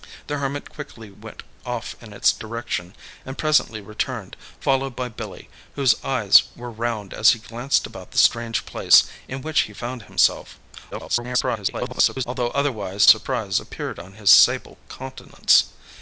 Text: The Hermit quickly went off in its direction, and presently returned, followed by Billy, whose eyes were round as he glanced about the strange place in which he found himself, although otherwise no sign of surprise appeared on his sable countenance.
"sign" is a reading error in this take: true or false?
true